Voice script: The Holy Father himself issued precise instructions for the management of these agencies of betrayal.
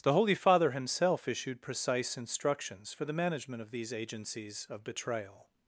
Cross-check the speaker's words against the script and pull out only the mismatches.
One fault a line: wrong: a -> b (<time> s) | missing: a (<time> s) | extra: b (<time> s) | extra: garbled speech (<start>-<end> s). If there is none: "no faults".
no faults